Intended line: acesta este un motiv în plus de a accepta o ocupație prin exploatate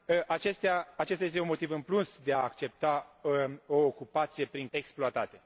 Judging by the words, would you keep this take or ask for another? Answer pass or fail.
pass